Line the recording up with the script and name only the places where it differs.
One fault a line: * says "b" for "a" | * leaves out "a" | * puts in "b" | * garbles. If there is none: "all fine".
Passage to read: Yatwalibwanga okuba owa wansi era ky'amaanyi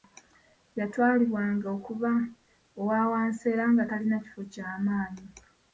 * puts in "nga talina kifo"